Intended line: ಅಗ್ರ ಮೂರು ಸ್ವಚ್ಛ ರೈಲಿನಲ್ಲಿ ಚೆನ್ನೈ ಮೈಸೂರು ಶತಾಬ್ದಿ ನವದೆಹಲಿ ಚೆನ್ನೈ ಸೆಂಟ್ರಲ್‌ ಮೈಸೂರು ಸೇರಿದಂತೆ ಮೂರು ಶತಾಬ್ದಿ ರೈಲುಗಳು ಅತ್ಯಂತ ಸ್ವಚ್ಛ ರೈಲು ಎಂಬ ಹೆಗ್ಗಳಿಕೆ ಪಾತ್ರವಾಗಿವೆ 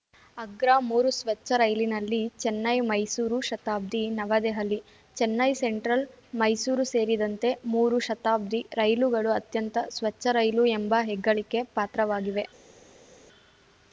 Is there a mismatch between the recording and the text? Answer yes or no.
no